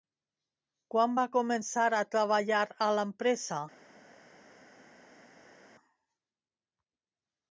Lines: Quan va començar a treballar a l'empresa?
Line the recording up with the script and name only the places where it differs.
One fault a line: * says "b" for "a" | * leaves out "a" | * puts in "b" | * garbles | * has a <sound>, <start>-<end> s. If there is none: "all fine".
all fine